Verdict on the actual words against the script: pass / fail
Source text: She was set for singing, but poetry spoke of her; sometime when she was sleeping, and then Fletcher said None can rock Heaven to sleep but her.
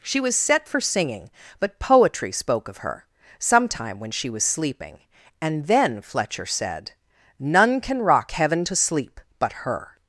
pass